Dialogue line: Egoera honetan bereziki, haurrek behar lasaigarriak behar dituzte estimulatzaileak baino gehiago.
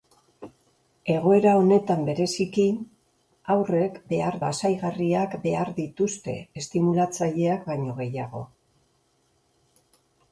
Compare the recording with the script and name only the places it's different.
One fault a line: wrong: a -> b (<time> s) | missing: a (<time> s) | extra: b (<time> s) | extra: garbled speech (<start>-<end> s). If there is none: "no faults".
no faults